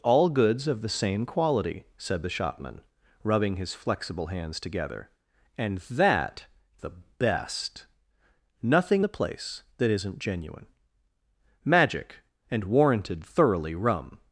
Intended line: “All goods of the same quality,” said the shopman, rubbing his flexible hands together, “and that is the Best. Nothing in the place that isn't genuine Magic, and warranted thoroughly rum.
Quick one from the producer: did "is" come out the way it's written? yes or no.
no